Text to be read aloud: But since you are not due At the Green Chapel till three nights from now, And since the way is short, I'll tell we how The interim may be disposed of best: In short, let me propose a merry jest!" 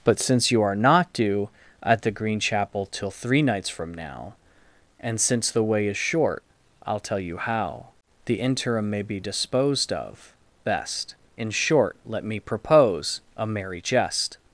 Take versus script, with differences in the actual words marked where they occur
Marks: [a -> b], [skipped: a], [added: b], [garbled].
But since you are not due At the Green Chapel till three nights from now, And since the way is short, I'll tell [we -> you] how The interim may be disposed of best: In short, let me propose a merry jest!"